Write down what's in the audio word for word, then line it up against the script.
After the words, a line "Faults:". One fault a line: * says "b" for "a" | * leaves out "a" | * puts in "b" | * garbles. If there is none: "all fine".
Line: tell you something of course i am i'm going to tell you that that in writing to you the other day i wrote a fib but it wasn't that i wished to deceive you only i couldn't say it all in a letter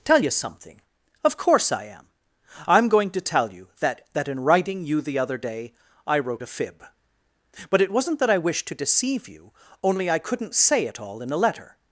tell you something of course i am i'm going to tell you that that in writing you the other day i wrote a fib but it wasn't that i wished to deceive you only i couldn't say it all in a letter
Faults:
* leaves out "to"